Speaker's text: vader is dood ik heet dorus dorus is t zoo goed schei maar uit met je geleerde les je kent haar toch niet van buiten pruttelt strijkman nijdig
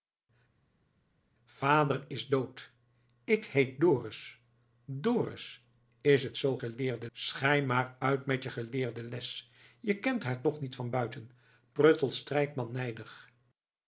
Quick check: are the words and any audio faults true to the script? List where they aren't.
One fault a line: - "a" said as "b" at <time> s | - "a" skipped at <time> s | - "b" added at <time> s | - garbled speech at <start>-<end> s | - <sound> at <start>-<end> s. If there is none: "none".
- "goed" said as "geleerde" at 6.6 s